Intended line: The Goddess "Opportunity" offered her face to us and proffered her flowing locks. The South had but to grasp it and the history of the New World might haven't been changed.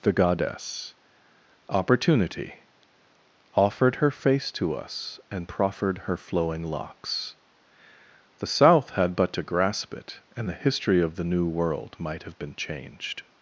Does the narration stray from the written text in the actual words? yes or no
yes